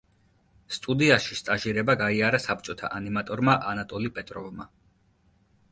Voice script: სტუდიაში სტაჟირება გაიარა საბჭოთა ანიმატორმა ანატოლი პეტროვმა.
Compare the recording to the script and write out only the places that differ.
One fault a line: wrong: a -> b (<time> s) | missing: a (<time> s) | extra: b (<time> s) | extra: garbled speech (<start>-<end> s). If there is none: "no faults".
no faults